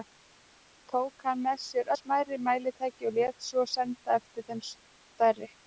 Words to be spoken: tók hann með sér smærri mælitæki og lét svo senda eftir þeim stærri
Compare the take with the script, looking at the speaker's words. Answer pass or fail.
pass